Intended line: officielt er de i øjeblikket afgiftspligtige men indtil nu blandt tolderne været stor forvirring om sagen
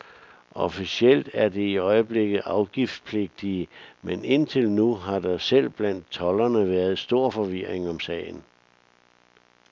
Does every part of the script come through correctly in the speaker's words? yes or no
no